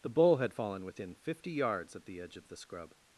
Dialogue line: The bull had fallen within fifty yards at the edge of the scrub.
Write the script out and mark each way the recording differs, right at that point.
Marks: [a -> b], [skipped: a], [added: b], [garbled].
The bull had fallen within fifty yards at the edge of the scrub.